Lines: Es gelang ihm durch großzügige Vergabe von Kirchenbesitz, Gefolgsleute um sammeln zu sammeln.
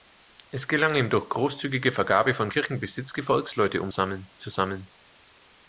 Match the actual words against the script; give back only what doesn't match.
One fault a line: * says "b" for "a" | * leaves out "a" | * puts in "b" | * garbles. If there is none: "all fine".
all fine